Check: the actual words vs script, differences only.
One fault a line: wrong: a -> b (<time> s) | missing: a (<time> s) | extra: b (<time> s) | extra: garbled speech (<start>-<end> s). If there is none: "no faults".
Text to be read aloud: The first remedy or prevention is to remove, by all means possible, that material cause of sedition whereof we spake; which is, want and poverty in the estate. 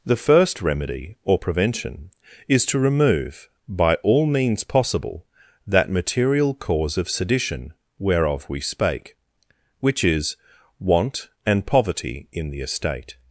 no faults